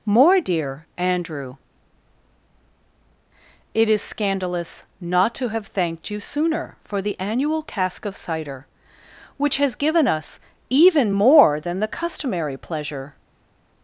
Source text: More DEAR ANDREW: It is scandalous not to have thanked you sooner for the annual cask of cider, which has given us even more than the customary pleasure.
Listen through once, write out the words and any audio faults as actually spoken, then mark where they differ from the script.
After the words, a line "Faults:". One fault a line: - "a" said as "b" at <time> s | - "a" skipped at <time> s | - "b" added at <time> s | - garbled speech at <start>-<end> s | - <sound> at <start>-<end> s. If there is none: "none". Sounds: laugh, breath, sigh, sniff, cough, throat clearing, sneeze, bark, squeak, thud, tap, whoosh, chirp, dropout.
More DEAR ANDREW: It is scandalous not to have thanked you sooner for the annual cask of cider, which has given us even more than the customary pleasure.
Faults:
none